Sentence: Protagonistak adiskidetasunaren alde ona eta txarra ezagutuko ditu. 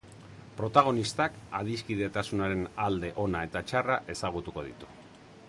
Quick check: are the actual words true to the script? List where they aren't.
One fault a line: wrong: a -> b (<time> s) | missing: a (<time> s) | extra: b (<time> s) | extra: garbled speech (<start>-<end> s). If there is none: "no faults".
no faults